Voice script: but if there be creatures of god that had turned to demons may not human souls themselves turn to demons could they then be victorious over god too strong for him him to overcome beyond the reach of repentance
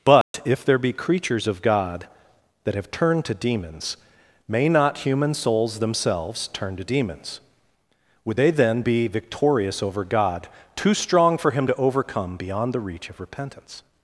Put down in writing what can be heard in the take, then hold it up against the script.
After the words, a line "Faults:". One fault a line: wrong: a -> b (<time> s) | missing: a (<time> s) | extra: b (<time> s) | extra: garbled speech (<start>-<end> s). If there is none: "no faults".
but if there be creatures of god that have turned to demons may not human souls themselves turn to demons would they then be victorious over god too strong for him to overcome beyond the reach of repentance
Faults:
wrong: had -> have (2.7 s)
wrong: could -> would (8.2 s)
missing: him (11.7 s)